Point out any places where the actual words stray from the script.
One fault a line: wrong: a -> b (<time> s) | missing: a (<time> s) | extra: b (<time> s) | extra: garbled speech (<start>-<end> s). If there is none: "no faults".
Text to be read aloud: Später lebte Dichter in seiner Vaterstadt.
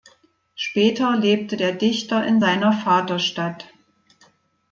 extra: der (1.6 s)